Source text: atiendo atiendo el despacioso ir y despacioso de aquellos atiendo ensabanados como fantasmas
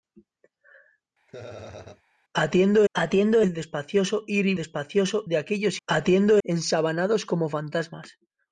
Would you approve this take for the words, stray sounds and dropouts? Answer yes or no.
no